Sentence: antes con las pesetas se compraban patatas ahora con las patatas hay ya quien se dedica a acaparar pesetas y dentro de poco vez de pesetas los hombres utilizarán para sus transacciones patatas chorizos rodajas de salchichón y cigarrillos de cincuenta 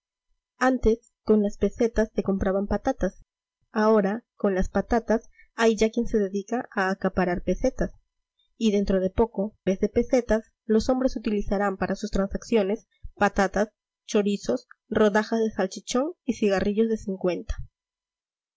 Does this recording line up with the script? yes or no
yes